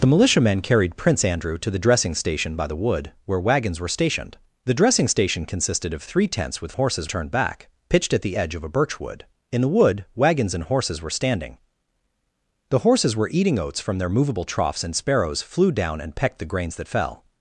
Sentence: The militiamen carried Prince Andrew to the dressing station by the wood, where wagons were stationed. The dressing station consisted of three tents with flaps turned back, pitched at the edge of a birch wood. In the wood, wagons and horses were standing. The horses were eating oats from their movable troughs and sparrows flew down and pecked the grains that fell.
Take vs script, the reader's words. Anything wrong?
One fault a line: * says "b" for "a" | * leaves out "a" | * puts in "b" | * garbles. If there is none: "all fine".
* says "horses" for "flaps"